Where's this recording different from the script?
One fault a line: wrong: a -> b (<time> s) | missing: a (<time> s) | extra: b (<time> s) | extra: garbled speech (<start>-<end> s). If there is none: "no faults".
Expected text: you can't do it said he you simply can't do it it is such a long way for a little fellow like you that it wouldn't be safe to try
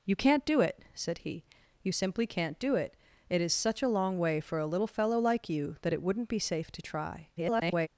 extra: garbled speech (7.4-7.9 s)